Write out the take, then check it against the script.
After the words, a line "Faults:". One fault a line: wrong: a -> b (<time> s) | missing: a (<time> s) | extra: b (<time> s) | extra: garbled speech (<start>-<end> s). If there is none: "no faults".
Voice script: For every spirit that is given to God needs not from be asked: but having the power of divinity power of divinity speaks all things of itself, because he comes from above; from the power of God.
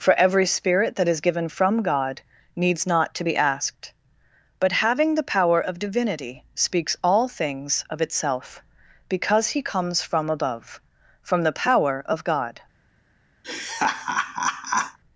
For every spirit that is given from God needs not to be asked: but having the power of divinity speaks all things of itself, because he comes from above; from the power of God.
Faults:
wrong: to -> from (1.5 s)
wrong: from -> to (3.1 s)
missing: power of divinity (6.5 s)